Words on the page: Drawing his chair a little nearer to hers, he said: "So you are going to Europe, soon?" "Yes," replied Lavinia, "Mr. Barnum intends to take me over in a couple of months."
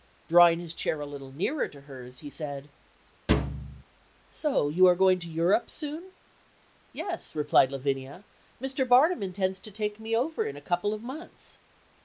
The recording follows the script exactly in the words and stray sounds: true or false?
false